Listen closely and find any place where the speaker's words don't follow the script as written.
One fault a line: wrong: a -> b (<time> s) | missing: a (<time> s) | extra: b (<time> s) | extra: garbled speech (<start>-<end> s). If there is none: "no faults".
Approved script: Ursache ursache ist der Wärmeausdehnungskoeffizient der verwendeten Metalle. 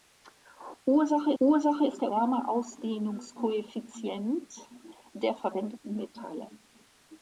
no faults